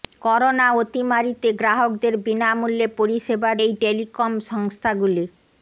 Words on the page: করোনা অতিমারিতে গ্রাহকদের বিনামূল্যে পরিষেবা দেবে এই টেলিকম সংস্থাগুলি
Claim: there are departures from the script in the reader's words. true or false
true